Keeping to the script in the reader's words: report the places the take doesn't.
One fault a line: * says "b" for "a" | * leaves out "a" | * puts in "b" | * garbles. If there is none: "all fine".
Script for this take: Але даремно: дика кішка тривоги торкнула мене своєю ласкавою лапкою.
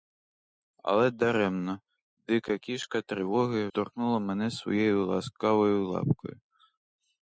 all fine